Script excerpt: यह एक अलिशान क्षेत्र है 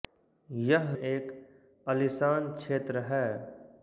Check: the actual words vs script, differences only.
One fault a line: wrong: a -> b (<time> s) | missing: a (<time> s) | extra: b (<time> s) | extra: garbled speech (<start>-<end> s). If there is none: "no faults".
no faults